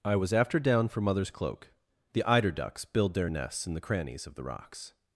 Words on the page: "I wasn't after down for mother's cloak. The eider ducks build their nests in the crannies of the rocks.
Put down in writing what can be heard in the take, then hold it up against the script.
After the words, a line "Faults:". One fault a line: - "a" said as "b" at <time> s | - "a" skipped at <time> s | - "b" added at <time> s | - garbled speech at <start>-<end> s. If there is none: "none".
"I was after down for mother's cloak. The eider ducks build their nests in the crannies of the rocks.
Faults:
- "wasn't" said as "was" at 0.1 s